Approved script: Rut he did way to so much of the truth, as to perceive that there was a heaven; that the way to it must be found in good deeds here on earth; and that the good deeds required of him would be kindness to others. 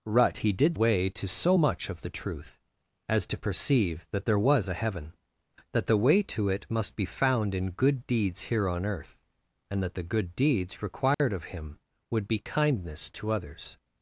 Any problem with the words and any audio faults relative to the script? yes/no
yes